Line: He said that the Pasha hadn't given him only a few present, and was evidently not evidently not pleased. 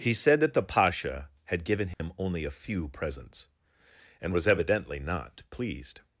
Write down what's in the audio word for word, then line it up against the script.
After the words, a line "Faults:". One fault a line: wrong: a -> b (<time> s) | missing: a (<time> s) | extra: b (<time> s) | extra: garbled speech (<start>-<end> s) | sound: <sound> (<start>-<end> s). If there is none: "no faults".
He said that the Pasha had given him only a few presents, and was evidently not pleased.
Faults:
wrong: hadn't -> had (1.4 s)
sound: dropout (1.9-2.0 s)
wrong: present -> presents (2.9 s)
missing: evidently not (5.4 s)